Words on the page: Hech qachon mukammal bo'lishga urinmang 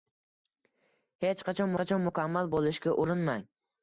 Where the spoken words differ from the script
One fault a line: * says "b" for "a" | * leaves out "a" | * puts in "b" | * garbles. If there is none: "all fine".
* puts in "qachon"